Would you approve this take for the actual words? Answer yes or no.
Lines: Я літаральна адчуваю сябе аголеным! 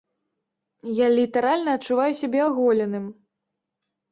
yes